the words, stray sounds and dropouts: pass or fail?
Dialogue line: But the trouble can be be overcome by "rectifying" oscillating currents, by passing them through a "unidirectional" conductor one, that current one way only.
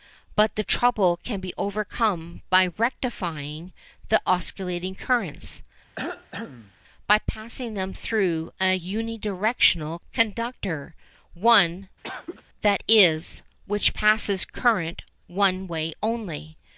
fail